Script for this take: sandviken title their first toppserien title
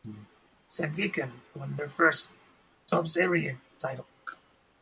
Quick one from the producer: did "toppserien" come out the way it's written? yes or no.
yes